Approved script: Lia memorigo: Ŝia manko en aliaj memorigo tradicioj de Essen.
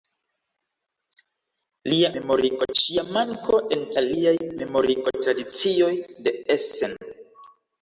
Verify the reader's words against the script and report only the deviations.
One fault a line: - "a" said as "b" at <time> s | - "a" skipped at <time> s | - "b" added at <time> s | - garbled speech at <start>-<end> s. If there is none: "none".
none